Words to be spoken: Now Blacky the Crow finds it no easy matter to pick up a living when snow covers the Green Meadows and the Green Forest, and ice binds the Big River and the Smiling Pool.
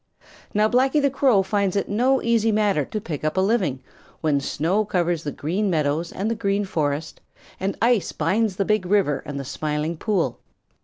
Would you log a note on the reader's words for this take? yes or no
no